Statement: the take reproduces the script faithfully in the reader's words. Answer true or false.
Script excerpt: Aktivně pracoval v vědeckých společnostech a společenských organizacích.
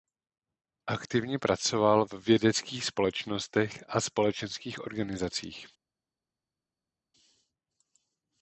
true